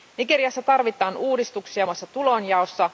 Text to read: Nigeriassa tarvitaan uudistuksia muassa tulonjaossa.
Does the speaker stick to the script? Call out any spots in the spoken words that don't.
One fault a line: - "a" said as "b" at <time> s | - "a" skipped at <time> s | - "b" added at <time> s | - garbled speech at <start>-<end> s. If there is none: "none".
none